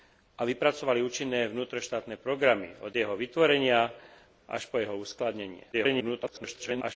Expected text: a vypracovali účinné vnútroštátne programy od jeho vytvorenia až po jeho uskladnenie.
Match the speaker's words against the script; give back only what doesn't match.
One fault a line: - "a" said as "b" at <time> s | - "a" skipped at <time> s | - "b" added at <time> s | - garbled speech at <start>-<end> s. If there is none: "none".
- garbled speech at 5.7-7.0 s